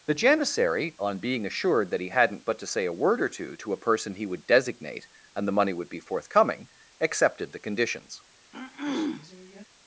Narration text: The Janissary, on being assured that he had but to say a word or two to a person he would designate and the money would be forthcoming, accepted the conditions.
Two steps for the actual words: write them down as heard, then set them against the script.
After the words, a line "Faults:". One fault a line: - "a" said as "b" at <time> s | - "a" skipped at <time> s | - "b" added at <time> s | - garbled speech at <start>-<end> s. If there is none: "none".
The Janissary, on being assured that he hadn't but to say a word or two to a person he would designate and the money would be forthcoming, accepted the conditions.
Faults:
- "had" said as "hadn't" at 2.1 s